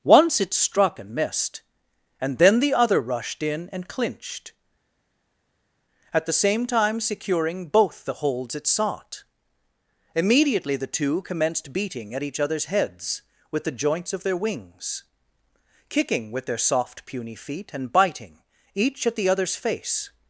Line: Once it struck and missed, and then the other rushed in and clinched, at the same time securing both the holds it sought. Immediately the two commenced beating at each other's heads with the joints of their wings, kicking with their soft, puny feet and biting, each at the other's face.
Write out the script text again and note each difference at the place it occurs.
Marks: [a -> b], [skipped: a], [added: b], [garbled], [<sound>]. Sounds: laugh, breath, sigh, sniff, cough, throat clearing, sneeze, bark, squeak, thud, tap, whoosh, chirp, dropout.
Once it struck and missed, and then the other rushed in and clinched, at the same time securing both the holds it sought. Immediately the two commenced beating at each other's heads with the joints of their wings, kicking with their soft, puny feet and biting, each at the other's face.